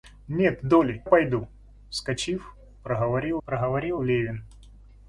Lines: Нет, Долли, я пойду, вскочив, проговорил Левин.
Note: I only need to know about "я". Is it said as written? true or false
false